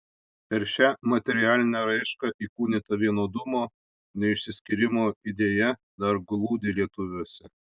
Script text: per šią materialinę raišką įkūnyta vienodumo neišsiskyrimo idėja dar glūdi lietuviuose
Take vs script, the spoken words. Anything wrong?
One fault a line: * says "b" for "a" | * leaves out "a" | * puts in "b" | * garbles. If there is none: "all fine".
all fine